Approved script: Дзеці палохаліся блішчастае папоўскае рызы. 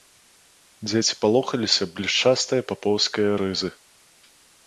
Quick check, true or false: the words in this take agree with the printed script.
true